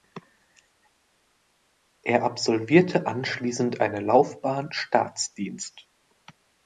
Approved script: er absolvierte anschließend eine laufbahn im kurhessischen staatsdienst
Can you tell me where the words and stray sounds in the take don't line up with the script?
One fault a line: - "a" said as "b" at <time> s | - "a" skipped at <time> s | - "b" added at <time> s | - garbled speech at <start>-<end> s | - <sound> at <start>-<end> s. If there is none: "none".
- "im kurhessischen" skipped at 4.7 s